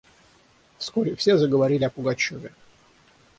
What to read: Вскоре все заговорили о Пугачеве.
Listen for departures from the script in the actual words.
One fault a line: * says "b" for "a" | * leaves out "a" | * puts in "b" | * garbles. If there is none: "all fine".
all fine